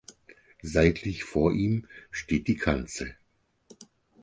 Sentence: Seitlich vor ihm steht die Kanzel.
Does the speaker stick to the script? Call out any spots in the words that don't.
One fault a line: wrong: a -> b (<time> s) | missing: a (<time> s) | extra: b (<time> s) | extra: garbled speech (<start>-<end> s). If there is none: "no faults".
no faults